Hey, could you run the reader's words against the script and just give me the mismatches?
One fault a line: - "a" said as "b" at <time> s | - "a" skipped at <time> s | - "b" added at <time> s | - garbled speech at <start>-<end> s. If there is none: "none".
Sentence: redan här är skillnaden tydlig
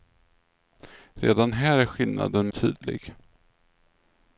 none